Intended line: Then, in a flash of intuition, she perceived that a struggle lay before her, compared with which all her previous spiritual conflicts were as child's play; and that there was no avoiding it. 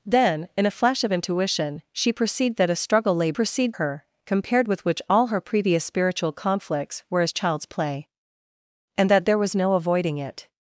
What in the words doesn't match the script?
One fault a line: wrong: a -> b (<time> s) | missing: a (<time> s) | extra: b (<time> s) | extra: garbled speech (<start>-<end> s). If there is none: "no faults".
wrong: before -> perceived (3.3 s)